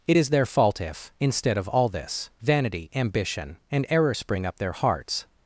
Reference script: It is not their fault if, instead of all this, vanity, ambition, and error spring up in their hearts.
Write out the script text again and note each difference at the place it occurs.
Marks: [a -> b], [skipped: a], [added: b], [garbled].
It is [skipped: not] their fault if, instead of all this, vanity, ambition, and error spring up [skipped: in] their hearts.